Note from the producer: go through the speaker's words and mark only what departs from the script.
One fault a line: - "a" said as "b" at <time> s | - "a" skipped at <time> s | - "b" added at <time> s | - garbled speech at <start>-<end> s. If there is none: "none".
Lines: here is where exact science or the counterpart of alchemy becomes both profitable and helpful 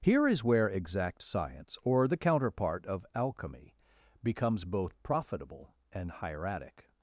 - "helpful" said as "hieratic" at 6.1 s